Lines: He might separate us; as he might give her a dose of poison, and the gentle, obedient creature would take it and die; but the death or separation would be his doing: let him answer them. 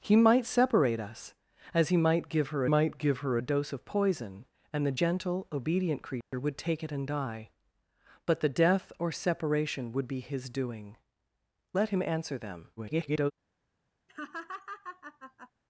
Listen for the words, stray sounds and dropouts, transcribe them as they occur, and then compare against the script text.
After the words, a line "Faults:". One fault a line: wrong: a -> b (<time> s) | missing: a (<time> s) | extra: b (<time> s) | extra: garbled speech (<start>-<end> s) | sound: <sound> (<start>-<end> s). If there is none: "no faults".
He might separate us; as he might give her might give her a dose of poison, and the gentle, obedient creature would take it and die; but the death or separation would be his doing: let him answer them. [garbled]
Faults:
extra: might give her (2.6 s)
sound: dropout (6.2-6.3 s)
extra: garbled speech (12.8-13.3 s)
sound: laugh (14.1-15.5 s)